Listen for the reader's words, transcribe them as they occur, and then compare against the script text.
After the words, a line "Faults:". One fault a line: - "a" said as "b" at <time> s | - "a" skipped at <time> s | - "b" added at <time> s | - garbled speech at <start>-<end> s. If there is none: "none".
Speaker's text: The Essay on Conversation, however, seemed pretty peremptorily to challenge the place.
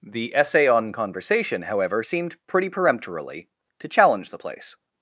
The Essay on Conversation, however, seemed pretty peremptorily to challenge the place.
Faults:
none